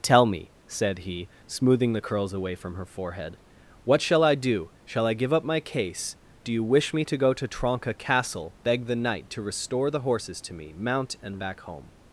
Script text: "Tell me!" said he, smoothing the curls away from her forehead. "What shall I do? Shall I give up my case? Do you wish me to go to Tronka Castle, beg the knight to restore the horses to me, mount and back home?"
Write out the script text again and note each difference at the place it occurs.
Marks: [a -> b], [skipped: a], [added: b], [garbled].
"Tell me!" said he, smoothing the curls away from her forehead. "What shall I do? Shall I give up my case? Do you wish me to go to Tronka Castle, beg the knight to restore the horses to me, mount and back home?"